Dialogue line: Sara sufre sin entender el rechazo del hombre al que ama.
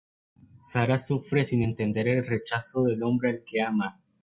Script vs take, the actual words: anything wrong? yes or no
no